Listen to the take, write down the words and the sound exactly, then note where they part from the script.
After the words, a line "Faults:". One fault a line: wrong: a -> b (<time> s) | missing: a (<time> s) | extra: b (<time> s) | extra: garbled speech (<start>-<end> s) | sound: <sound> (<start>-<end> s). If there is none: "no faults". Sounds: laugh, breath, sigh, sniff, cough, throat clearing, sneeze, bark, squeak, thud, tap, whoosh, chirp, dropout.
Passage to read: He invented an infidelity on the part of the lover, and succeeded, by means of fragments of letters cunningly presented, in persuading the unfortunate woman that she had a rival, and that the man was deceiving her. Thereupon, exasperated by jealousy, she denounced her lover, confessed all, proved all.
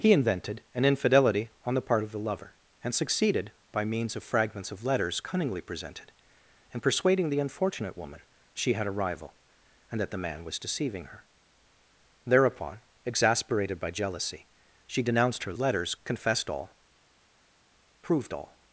He invented an infidelity on the part of the lover, and succeeded, by means of fragments of letters cunningly presented, in persuading the unfortunate woman she had a rival, and that the man was deceiving her. Thereupon, exasperated by jealousy, she denounced her letters, confessed all, proved all.
Faults:
missing: that (8.2 s)
wrong: lover -> letters (15.6 s)